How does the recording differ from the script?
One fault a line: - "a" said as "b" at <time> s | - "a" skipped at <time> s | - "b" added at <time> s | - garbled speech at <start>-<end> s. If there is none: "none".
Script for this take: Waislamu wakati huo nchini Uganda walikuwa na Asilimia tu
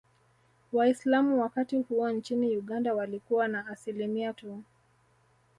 none